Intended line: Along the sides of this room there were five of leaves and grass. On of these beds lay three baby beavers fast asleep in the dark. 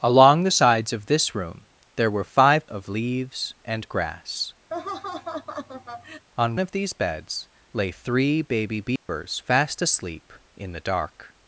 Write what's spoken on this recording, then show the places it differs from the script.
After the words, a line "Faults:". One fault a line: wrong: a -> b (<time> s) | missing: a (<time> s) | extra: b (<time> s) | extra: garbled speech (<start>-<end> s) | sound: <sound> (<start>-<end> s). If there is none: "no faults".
Along the sides of this room there were five of leaves and grass. On of these beds lay three baby beavers fast asleep in the dark.
Faults:
sound: laugh (4.7-6.3 s)
sound: dropout (9.0-9.1 s)